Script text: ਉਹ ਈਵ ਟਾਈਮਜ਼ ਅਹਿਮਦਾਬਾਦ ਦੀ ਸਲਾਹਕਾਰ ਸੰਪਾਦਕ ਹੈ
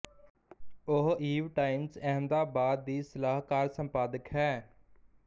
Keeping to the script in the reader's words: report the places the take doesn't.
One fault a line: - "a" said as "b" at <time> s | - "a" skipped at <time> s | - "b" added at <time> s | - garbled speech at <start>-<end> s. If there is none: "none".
none